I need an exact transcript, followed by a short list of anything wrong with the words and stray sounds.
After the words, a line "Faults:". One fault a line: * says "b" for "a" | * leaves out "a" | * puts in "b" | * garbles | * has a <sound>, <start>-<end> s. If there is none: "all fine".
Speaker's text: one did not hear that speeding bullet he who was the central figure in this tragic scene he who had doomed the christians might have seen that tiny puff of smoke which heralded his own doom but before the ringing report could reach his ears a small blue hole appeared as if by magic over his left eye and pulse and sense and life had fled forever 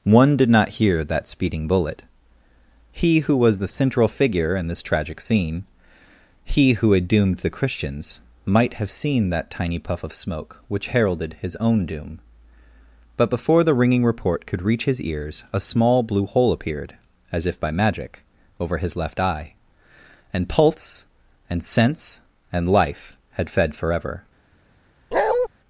one did not hear that speeding bullet he who was the central figure in this tragic scene he who had doomed the christians might have seen that tiny puff of smoke which heralded his own doom but before the ringing report could reach his ears a small blue hole appeared as if by magic over his left eye and pulse and sense and life had fed forever
Faults:
* says "fed" for "fled"
* has a bark, 25.1-25.5 s